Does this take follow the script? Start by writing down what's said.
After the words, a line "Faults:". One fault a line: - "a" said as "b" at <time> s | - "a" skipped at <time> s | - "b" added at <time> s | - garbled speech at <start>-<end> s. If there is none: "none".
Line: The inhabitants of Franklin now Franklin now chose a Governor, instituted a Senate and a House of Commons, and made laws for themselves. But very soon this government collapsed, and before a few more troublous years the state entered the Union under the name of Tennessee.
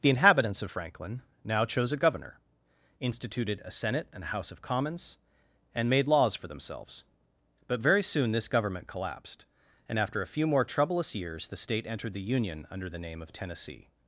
The inhabitants of Franklin now chose a Governor, instituted a Senate and a House of Commons, and made laws for themselves. But very soon this government collapsed, and after a few more troublous years the state entered the Union under the name of Tennessee.
Faults:
- "Franklin now" skipped at 1.6 s
- "before" said as "after" at 10.0 s